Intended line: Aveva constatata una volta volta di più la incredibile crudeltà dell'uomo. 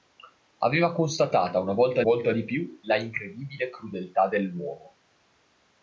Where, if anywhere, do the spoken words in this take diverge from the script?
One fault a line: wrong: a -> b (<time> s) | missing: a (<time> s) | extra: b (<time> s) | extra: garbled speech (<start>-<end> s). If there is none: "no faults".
no faults